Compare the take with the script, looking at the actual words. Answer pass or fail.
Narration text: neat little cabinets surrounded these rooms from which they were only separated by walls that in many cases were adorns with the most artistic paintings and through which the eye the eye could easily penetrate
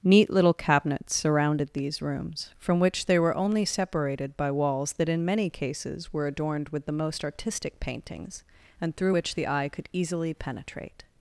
fail